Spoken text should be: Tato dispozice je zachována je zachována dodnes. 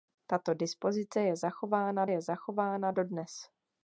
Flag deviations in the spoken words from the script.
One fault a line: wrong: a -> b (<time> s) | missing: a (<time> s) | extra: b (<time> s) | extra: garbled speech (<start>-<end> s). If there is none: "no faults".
no faults